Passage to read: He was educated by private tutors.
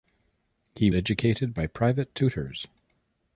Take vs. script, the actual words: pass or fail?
fail